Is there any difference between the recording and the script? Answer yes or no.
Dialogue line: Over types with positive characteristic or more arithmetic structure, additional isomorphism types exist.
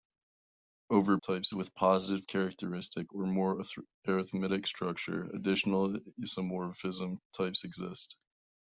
no